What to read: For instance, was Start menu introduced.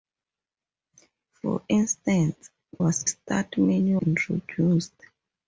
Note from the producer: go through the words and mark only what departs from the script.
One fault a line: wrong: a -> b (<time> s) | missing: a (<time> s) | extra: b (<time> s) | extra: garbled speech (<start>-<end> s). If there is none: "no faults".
no faults